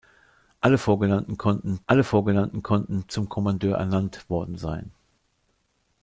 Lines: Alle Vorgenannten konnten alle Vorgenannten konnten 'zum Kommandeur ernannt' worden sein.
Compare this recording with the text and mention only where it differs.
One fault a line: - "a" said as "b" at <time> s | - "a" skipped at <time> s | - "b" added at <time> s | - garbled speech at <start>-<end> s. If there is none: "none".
none